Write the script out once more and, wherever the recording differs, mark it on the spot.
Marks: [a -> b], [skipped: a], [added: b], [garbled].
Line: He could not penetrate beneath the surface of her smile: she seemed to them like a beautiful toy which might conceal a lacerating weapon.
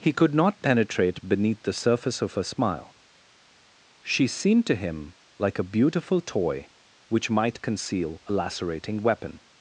He could not penetrate beneath the surface of her smile: she seemed to [them -> him] like a beautiful toy which might conceal a lacerating weapon.